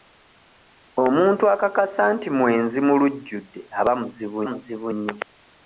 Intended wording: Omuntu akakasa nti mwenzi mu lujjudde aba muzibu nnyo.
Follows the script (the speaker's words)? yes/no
no